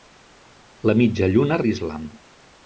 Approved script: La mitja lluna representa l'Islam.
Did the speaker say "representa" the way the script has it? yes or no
no